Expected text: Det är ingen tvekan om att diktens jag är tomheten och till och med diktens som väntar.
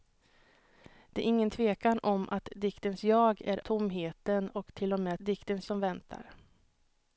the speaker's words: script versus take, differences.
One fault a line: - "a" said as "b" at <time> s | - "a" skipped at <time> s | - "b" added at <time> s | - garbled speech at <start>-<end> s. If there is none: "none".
none